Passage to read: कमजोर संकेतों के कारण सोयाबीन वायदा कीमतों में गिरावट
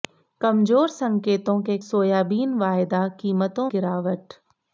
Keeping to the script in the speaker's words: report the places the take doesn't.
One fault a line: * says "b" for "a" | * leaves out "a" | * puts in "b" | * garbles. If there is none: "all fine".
* leaves out "कारण"
* leaves out "में"